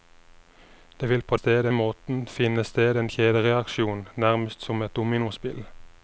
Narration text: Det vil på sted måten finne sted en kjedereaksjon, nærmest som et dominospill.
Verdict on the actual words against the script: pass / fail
pass